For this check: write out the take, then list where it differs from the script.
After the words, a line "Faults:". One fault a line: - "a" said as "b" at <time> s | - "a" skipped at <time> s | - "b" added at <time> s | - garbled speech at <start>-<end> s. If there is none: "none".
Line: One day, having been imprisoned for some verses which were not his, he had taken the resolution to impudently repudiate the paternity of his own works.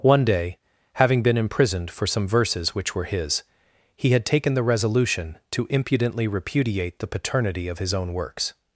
One day, having been imprisoned for some verses which were his, he had taken the resolution to impudently repudiate the paternity of his own works.
Faults:
- "not" skipped at 3.0 s